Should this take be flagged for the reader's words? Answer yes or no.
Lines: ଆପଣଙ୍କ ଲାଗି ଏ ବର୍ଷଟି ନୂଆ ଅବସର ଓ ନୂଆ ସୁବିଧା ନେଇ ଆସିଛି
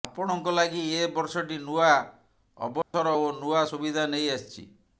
no